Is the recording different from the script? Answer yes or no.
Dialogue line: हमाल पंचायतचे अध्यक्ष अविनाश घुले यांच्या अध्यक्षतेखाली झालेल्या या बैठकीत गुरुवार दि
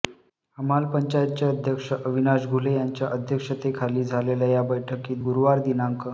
no